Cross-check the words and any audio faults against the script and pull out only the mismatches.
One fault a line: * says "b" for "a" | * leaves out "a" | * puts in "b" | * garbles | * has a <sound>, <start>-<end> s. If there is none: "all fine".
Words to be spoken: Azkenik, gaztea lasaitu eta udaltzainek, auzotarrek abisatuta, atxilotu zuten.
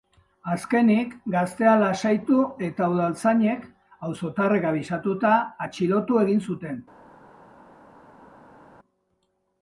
* puts in "egin"